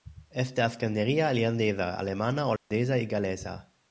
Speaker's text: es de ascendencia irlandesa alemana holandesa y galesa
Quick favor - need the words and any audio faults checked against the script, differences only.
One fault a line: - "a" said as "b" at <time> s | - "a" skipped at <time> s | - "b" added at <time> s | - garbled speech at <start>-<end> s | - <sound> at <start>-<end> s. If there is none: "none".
- dropout at 2.6-2.7 s